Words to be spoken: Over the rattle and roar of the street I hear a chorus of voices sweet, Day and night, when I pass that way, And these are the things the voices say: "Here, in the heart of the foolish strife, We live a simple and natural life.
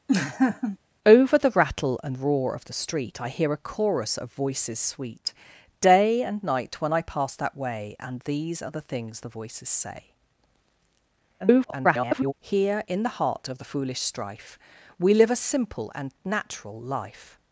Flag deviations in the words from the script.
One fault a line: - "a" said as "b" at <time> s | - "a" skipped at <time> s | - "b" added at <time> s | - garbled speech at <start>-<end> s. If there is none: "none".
- garbled speech at 11.4-12.3 s